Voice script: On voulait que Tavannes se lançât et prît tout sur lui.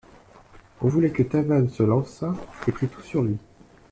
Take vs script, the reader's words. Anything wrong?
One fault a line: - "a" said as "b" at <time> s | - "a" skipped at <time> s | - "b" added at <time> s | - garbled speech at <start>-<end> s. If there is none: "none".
none